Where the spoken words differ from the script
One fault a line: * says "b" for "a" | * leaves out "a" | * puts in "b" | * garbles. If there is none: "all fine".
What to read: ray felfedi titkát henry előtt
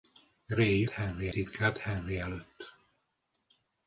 * says "henry" for "felfedi"